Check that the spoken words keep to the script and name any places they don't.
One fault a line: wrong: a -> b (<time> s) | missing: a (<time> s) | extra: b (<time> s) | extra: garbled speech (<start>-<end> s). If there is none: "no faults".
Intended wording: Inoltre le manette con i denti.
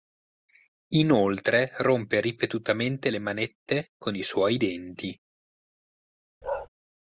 extra: rompe ripetutamente (1.8 s)
extra: suoi (4.2 s)